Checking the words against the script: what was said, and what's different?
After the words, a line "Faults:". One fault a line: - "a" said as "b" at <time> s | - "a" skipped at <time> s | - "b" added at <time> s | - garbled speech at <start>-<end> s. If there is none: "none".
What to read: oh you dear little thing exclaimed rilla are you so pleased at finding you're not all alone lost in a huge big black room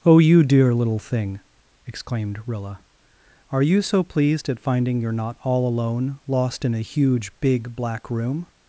oh you dear little thing exclaimed rilla are you so pleased at finding you're not all alone lost in a huge big black room
Faults:
none